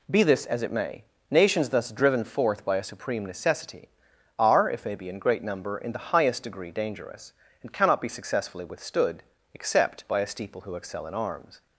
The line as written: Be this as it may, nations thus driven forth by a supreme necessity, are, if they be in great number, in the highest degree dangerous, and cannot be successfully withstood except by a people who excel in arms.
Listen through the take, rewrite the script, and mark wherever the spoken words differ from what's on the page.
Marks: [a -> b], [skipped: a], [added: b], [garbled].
Be this as it may, nations thus driven forth by a supreme necessity, are, if they be in great number, in the highest degree dangerous, and cannot be successfully withstood except by a [people -> steeple] who excel in arms.